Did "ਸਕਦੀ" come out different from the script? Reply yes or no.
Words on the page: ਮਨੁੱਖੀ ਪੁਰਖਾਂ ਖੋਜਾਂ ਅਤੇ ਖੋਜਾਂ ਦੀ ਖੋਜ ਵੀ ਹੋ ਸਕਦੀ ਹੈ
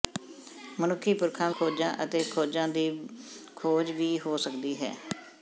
no